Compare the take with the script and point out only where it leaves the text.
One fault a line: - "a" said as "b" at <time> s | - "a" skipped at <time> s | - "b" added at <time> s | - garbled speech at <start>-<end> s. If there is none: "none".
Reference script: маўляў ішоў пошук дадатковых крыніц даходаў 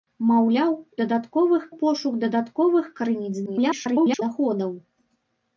- "ішоў" said as "дадатковых" at 1.0 s
- garbled speech at 3.5-4.2 s